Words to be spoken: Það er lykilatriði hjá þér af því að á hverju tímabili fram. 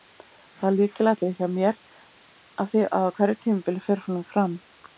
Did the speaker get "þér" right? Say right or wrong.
wrong